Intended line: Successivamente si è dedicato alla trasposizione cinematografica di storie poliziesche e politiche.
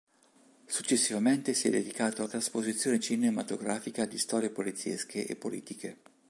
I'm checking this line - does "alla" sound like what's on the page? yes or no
no